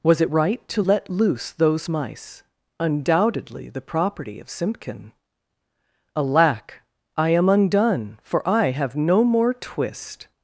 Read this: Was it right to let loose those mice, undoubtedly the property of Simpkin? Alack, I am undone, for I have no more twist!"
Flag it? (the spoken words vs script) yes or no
no